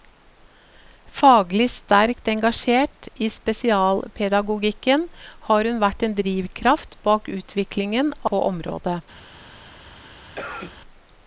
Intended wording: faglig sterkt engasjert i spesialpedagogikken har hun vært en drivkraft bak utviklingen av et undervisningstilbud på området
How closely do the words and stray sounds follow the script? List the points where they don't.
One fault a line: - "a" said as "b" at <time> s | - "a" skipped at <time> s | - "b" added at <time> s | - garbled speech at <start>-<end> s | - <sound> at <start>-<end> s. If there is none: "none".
- "av et undervisningstilbud" skipped at 8.1 s
- cough at 10.4-10.8 s